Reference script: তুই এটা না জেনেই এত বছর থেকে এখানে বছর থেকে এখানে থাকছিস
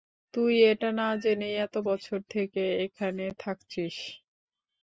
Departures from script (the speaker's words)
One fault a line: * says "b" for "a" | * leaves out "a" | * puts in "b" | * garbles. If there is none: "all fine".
* leaves out "বছর থেকে এখানে"